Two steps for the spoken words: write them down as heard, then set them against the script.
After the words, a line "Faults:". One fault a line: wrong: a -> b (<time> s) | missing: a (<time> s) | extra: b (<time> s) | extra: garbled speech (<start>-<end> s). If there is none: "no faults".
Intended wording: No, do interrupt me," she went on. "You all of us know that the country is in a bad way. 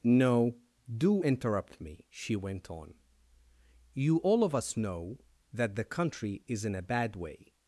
No, do interrupt me," she went on. "You all of us know that the country is in a bad way.
Faults:
no faults